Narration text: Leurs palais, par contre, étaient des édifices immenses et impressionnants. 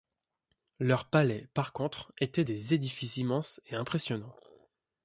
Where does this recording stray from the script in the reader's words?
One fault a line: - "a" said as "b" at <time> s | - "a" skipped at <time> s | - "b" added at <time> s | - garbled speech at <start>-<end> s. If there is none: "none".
none